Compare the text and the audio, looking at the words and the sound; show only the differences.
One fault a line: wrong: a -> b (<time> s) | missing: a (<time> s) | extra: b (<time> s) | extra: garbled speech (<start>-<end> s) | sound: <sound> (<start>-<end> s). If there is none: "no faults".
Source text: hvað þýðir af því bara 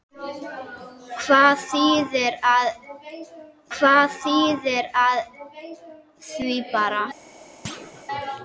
extra: hvað þýðir af (3.8 s)
sound: thud (7.6-8.0 s)